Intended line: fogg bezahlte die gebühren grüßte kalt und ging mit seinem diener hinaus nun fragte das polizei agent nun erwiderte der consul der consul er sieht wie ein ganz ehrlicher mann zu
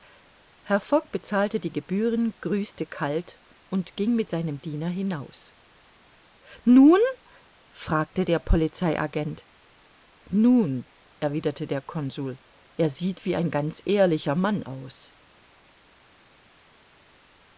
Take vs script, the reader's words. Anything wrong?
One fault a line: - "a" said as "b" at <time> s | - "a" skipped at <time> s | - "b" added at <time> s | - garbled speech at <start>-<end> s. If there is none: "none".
- "das" said as "der" at 8.2 s
- "der consul" skipped at 12.4 s
- "zu" said as "aus" at 14.6 s